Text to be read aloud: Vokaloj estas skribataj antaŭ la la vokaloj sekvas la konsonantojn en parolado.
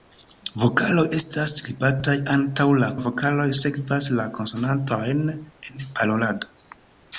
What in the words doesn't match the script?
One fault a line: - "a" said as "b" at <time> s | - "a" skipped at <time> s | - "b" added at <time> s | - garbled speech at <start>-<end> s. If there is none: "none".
none